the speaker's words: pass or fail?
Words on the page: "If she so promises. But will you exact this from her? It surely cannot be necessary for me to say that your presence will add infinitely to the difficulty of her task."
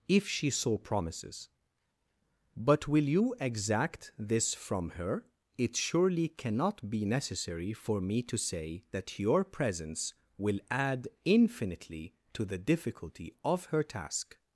pass